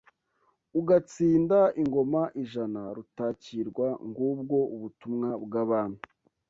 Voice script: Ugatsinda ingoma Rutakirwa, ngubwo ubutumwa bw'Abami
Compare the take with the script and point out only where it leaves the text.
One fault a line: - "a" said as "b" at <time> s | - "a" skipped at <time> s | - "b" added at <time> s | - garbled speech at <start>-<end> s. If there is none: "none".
- "ijana" added at 2.4 s